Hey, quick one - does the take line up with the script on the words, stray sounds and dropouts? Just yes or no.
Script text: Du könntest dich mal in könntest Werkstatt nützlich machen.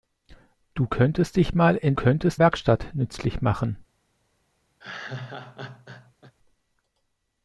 no